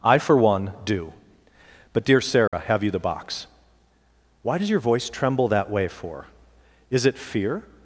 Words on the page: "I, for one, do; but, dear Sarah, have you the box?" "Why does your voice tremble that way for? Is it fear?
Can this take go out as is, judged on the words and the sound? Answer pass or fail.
fail